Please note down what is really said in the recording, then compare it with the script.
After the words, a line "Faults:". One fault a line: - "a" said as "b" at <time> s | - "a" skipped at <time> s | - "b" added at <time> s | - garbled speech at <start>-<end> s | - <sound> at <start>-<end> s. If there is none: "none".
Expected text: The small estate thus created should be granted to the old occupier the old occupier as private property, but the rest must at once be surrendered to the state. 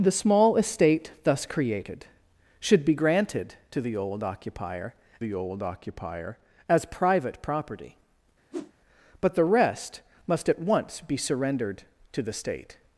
The small estate thus created should be granted to the old occupier the old occupier as private property, but the rest must at once be surrendered to the state.
Faults:
- whoosh at 8.5-8.7 s